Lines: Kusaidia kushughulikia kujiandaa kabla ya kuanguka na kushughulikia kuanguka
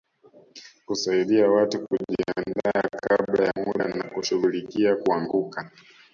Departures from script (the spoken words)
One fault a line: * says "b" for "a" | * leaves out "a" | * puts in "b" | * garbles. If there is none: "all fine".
* says "watu" for "kushughulikia"
* says "muda" for "kuanguka"